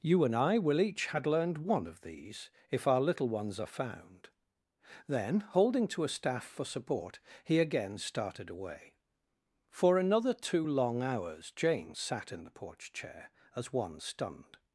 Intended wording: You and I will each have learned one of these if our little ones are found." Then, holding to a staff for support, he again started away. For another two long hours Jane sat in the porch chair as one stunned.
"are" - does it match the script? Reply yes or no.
yes